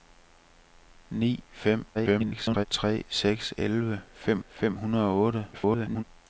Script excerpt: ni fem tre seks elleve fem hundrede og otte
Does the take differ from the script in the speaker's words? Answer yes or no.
yes